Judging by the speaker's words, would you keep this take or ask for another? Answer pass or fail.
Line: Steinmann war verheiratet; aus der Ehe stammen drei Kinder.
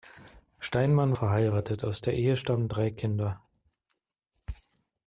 fail